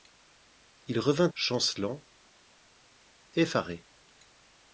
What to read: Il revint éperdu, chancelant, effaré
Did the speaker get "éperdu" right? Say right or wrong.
wrong